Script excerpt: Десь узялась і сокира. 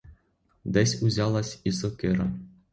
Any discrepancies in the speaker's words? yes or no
no